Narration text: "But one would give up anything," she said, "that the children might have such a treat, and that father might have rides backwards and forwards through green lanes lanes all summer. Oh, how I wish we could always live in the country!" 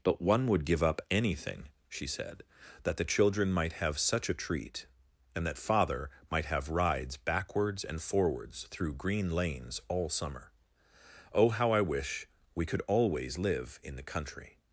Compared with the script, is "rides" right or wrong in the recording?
right